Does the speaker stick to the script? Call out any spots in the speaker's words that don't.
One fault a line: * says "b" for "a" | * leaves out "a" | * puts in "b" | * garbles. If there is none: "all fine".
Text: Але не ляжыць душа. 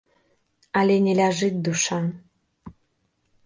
all fine